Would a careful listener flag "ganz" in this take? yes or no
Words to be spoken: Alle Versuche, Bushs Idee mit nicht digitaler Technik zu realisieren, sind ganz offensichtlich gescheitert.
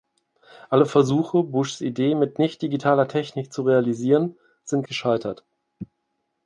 yes